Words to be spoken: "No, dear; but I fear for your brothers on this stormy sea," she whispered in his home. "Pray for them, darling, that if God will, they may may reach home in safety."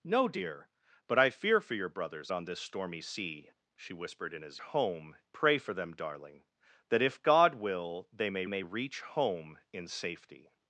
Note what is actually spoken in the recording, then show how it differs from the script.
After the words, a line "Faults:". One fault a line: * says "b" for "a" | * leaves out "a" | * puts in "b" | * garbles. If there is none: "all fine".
"No, dear; but I fear for your brothers on this stormy sea," she whispered in his home. "Pray for them, darling, that if God will, they may may reach home in safety."
Faults:
all fine